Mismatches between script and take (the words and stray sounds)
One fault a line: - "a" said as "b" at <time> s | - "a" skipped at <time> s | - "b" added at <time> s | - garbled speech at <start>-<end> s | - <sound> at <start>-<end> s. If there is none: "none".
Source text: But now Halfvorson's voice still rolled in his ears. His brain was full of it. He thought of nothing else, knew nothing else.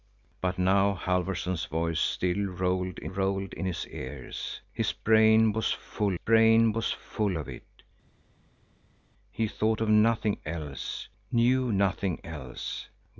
- "rolled in" added at 3.0 s
- "brain was full" added at 6.1 s